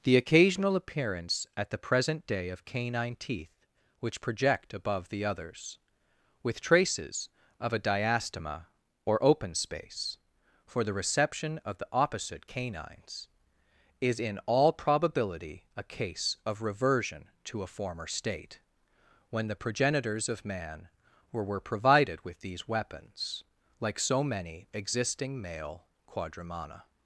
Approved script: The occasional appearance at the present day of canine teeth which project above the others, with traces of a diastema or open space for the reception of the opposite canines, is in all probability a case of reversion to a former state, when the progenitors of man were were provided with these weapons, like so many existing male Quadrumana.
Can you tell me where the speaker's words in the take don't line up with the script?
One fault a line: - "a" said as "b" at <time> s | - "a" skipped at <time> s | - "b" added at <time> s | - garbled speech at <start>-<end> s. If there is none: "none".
none